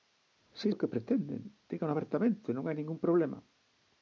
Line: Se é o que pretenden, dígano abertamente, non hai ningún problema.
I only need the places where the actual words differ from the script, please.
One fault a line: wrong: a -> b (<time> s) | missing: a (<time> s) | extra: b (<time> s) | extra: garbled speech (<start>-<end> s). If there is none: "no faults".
no faults